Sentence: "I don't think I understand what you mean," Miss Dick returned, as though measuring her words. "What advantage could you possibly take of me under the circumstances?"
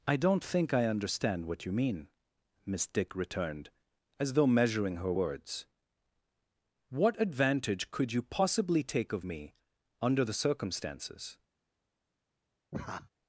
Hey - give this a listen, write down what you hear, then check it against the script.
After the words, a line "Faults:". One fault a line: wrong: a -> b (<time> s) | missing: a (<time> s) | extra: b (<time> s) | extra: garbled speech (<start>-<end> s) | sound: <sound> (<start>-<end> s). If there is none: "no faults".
"I don't think I understand what you mean," Miss Dick returned, as though measuring her words. "What advantage could you possibly take of me under the circumstances?"
Faults:
sound: laugh (12.7-13.1 s)